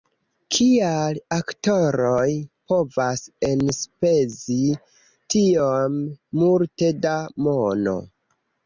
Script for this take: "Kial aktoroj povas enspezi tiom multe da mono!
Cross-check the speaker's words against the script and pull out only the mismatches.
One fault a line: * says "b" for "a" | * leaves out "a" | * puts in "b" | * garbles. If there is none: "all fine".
all fine